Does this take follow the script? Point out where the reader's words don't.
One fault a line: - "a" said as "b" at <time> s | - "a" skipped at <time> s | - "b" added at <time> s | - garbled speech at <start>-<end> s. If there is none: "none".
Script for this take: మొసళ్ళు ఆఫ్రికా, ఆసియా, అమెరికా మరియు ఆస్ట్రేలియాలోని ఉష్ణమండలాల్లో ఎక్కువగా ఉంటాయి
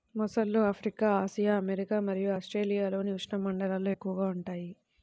none